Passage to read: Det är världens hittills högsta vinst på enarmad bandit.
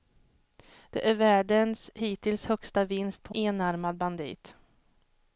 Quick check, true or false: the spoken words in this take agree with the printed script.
true